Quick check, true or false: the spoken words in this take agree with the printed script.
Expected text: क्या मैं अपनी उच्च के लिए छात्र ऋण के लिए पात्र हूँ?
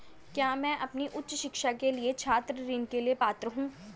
false